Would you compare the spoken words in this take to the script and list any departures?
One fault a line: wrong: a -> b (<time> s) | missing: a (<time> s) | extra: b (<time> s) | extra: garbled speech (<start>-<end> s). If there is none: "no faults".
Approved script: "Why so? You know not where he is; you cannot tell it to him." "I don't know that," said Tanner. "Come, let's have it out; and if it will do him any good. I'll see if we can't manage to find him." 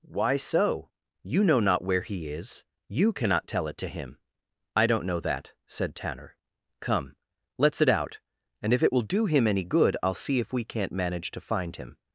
missing: have (7.8 s)